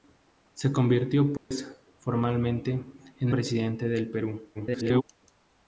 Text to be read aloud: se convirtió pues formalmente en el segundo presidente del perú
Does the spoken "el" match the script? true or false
false